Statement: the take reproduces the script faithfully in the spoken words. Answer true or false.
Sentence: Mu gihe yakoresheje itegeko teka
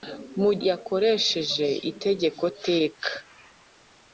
false